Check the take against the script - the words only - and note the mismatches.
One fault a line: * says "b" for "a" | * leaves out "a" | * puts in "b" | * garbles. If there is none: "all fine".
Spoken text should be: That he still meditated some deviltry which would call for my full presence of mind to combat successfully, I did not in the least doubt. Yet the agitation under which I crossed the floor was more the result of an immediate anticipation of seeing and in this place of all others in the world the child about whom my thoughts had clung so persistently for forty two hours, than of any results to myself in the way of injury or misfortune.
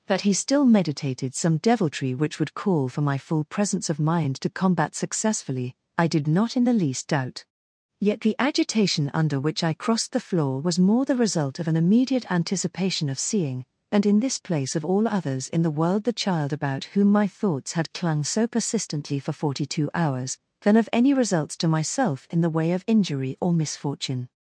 all fine